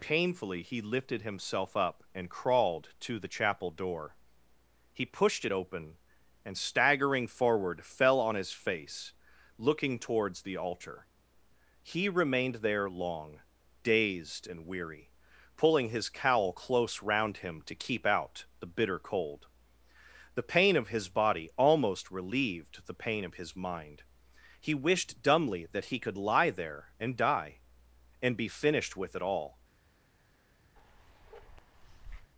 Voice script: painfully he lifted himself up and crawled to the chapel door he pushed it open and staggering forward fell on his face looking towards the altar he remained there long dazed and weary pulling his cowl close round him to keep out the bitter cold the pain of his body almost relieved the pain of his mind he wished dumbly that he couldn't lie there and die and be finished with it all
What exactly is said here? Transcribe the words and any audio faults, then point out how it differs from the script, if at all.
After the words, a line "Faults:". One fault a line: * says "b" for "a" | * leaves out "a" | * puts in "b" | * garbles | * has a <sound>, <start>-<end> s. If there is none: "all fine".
painfully he lifted himself up and crawled to the chapel door he pushed it open and staggering forward fell on his face looking towards the altar he remained there long dazed and weary pulling his cowl close round him to keep out the bitter cold the pain of his body almost relieved the pain of his mind he wished dumbly that he could lie there and die and be finished with it all
Faults:
* says "could" for "couldn't"
* has a bark, 30.8-32.3 s